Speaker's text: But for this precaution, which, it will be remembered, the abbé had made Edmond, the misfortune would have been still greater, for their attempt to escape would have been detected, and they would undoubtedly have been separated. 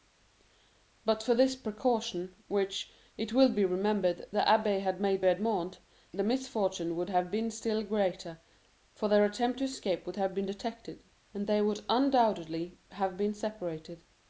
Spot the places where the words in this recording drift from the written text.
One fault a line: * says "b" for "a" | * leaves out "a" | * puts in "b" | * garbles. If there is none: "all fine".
all fine